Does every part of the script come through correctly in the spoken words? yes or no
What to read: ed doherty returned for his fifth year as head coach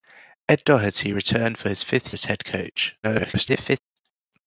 no